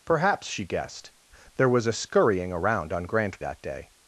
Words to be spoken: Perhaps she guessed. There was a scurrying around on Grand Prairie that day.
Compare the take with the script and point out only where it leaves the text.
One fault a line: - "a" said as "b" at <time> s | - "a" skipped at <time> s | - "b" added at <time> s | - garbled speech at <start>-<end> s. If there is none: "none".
- "Prairie" skipped at 3.4 s